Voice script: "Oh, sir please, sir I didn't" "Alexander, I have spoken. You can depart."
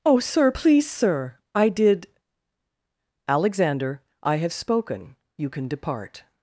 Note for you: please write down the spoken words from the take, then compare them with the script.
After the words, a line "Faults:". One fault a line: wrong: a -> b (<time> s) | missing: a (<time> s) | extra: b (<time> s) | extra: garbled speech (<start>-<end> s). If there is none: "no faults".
"Oh, sir please, sir I did" "Alexander, I have spoken. You can depart."
Faults:
wrong: didn't -> did (1.7 s)